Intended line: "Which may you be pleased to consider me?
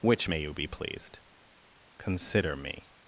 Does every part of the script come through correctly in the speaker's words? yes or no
no